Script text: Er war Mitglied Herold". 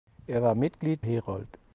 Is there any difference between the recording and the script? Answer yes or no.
no